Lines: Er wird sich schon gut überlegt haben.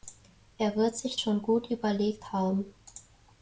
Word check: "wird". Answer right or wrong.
right